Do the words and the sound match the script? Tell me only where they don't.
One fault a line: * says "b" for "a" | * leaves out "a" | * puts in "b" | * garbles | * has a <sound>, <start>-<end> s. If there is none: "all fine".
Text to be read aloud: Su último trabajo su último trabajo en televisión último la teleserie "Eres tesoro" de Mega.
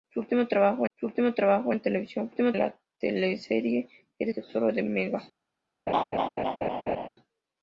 * has a laugh, 5.9-7.1 s